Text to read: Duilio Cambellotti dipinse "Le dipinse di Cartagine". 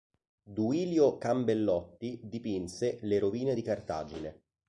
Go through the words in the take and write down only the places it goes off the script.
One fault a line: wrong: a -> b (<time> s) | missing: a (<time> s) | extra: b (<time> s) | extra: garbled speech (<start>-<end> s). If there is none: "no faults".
wrong: dipinse -> rovine (3.2 s)